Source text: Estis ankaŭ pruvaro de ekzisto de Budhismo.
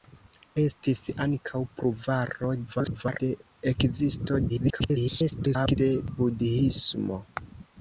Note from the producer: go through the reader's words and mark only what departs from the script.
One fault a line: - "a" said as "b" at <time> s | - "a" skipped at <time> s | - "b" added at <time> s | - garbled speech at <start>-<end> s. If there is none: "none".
- garbled speech at 2.7-3.2 s
- garbled speech at 4.5-5.8 s